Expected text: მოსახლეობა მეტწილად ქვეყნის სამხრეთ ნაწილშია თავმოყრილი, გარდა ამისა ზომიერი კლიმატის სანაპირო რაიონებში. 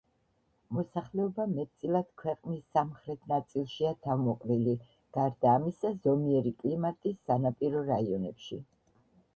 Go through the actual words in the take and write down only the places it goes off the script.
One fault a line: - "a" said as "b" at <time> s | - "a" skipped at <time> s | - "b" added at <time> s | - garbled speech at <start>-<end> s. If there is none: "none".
none